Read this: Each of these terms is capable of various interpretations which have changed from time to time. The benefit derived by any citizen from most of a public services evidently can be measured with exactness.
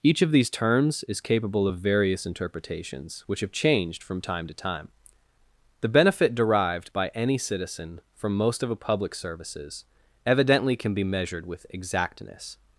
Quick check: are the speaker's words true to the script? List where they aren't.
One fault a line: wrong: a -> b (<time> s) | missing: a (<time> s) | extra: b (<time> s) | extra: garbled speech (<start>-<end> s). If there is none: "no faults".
no faults